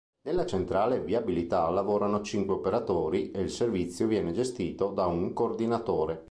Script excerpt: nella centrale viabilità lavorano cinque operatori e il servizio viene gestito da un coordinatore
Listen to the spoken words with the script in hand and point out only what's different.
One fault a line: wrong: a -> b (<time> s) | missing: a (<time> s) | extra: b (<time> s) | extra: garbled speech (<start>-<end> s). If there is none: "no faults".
no faults